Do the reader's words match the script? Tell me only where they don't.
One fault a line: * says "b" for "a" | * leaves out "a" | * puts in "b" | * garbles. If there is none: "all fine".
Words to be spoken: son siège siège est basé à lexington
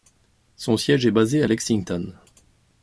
* leaves out "siège"